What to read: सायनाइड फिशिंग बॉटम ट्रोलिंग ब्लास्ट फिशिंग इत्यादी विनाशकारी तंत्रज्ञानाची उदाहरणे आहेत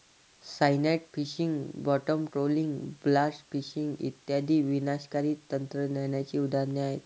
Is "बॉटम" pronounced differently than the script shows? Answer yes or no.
no